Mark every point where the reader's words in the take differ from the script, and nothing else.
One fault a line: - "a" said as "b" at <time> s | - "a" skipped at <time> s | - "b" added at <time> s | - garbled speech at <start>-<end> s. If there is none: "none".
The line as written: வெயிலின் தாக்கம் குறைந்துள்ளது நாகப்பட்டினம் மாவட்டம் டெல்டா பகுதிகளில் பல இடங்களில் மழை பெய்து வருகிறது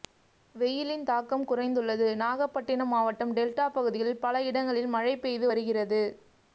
none